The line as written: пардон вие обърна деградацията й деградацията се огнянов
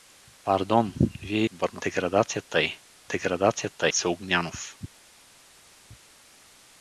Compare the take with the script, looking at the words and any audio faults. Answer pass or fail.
pass